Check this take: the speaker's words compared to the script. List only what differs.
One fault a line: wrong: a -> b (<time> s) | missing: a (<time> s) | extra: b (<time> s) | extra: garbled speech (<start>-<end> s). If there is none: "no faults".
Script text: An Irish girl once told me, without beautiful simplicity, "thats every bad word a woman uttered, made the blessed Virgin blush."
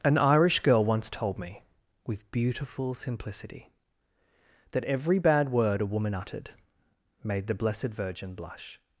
wrong: without -> with (2.1 s)
wrong: thats -> that (4.7 s)